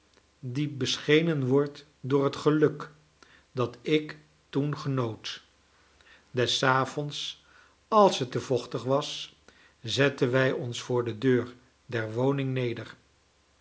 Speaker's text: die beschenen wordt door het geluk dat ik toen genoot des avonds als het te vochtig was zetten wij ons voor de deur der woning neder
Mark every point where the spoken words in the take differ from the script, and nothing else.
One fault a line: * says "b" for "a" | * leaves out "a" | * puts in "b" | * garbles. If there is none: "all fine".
all fine